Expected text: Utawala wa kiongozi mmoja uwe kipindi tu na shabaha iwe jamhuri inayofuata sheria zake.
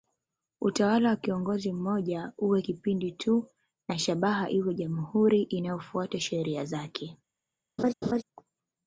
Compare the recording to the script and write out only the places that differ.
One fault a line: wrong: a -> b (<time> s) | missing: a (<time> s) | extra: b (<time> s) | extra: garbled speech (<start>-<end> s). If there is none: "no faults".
no faults